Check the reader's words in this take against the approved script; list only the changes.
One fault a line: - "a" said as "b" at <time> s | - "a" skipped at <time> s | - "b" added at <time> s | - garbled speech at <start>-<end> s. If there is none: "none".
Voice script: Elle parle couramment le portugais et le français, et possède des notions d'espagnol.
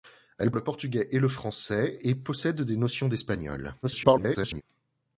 - "parle couramment" skipped at 0.5 s
- garbled speech at 3.8-4.6 s